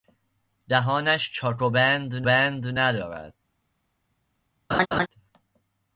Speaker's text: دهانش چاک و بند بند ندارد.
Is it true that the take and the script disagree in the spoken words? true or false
false